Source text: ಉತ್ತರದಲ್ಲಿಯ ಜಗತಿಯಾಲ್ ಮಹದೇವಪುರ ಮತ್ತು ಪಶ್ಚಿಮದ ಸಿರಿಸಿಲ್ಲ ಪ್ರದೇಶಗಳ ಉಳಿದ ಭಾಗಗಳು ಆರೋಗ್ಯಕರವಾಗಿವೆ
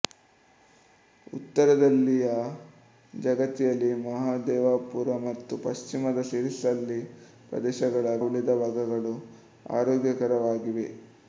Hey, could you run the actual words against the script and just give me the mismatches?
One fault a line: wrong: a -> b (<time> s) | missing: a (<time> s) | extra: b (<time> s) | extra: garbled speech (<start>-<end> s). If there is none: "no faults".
no faults